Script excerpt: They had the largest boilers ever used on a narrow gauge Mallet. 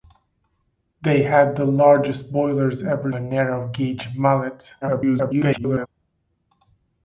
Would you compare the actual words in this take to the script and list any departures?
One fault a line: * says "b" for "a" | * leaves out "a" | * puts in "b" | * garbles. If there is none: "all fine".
* leaves out "used on"
* garbles